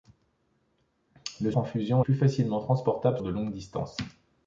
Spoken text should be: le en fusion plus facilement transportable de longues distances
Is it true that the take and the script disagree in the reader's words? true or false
false